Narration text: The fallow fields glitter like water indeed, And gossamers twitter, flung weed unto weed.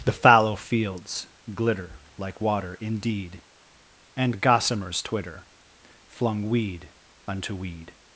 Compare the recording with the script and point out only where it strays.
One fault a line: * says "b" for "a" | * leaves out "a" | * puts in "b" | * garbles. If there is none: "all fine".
all fine